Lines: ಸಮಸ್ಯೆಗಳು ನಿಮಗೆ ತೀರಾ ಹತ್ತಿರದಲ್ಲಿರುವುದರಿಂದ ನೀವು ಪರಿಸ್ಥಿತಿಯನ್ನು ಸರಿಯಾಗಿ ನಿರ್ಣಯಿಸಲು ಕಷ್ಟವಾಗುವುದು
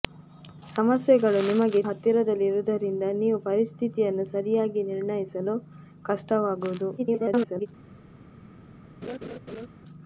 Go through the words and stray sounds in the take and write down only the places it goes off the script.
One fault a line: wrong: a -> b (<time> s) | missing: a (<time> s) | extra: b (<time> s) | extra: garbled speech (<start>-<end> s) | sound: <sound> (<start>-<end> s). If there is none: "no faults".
missing: ತೀರಾ (1.8 s)
extra: garbled speech (7.0-7.7 s)
sound: laugh (9.0-9.7 s)